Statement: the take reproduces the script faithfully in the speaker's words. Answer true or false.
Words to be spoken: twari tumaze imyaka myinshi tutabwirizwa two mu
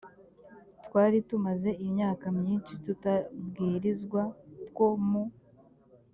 true